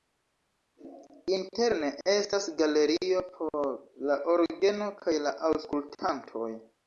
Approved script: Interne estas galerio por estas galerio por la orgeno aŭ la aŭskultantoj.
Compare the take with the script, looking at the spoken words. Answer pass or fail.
fail